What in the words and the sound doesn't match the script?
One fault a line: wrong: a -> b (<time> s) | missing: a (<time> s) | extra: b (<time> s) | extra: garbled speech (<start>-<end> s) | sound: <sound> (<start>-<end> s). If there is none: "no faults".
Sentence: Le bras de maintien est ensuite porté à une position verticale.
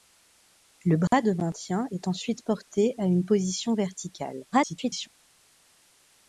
sound: dropout (1.1-1.1 s)
extra: garbled speech (4.5-5.1 s)